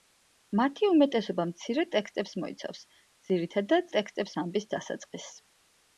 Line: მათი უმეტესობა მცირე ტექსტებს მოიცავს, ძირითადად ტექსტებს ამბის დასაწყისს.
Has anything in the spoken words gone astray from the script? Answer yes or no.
no